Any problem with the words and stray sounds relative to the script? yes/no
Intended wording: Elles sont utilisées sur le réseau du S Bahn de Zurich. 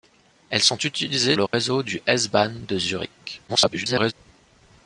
yes